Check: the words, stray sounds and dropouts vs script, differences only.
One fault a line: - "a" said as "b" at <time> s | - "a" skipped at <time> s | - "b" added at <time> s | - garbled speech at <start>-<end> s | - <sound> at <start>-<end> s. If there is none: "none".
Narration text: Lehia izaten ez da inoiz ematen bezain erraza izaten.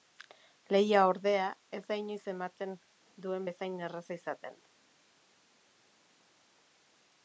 - "izaten" said as "ordea" at 1.1 s
- "duen" added at 3.2 s